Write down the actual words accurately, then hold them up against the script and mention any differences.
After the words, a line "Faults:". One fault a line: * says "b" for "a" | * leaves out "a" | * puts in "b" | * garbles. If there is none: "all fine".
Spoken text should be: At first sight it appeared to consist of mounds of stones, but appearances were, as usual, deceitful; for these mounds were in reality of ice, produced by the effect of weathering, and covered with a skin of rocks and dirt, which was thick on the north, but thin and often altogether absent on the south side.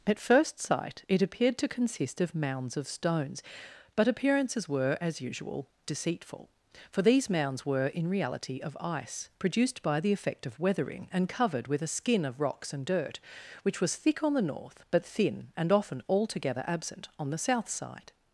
At first sight it appeared to consist of mounds of stones, but appearances were, as usual, deceitful; for these mounds were in reality of ice, produced by the effect of weathering, and covered with a skin of rocks and dirt, which was thick on the north, but thin and often altogether absent on the south side.
Faults:
all fine